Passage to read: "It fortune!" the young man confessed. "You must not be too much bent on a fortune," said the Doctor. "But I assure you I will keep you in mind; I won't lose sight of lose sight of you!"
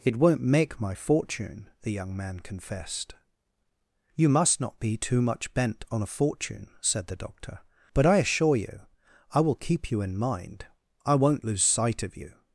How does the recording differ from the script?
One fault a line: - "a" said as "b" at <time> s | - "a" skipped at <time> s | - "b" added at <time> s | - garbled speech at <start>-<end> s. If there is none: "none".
- "won't make my" added at 0.1 s
- "lose sight of" skipped at 12.2 s